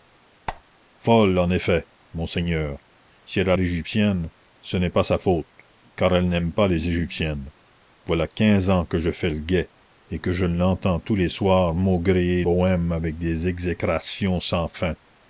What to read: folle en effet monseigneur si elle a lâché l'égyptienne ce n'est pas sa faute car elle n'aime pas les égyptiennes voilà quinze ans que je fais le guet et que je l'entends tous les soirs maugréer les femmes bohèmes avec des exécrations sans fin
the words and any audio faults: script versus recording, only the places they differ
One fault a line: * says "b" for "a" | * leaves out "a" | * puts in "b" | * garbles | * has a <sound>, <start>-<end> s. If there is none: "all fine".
* has a squeak, 0.5-0.6 s
* leaves out "lâché"
* leaves out "les femmes"